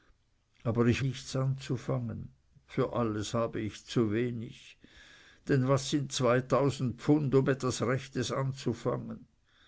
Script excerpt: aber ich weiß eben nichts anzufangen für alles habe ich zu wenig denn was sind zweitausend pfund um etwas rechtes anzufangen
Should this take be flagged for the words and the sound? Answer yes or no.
yes